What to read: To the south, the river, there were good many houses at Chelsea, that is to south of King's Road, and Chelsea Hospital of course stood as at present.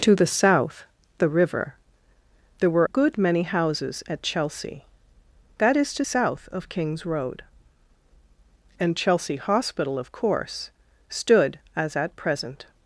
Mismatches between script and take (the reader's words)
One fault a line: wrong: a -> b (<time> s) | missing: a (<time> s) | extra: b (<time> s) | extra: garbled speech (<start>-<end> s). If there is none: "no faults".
no faults